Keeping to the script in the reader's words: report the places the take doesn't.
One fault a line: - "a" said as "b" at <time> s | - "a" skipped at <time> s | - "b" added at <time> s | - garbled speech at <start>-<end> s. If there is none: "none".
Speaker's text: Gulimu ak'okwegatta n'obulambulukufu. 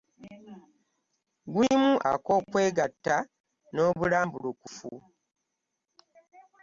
none